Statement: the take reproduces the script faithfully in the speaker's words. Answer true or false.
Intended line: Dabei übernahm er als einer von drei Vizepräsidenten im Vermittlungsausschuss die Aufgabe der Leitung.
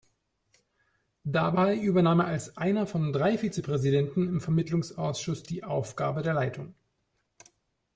true